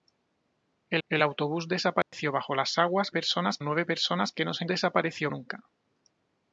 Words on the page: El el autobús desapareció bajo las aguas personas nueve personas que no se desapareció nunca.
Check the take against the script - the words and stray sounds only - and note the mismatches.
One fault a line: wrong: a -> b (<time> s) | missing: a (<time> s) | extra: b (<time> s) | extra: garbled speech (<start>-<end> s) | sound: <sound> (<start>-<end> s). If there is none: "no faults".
sound: dropout (2.0-2.1 s)